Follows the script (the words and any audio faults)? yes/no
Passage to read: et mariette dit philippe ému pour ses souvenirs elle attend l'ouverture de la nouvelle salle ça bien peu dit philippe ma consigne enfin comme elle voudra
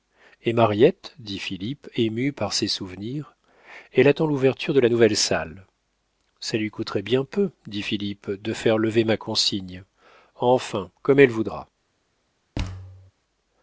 no